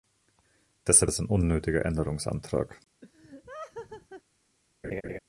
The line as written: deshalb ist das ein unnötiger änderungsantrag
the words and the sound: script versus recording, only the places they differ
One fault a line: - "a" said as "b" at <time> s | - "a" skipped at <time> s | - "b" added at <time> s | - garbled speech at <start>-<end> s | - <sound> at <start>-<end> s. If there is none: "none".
- "ist" skipped at 1.1 s
- laugh at 3.0-4.2 s
- laugh at 4.8-5.2 s